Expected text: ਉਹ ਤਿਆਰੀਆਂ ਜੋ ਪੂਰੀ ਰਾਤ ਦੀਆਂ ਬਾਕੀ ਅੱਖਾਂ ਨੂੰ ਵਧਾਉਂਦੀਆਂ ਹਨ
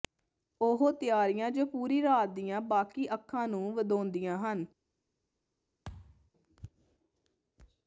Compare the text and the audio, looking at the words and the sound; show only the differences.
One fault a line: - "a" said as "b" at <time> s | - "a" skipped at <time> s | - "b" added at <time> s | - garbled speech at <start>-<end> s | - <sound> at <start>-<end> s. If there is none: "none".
- thud at 5.8-6.3 s